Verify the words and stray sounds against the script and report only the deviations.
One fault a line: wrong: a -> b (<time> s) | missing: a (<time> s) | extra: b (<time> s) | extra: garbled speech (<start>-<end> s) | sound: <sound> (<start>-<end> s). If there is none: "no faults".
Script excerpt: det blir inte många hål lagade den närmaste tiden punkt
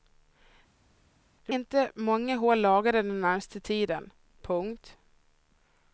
missing: blir (1.5 s)